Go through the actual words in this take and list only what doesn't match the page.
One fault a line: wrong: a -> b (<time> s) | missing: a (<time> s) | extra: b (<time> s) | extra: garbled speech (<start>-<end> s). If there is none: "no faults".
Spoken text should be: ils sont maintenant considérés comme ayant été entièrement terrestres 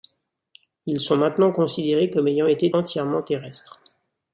no faults